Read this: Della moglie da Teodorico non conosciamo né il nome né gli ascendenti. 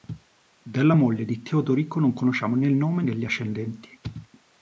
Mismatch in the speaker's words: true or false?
true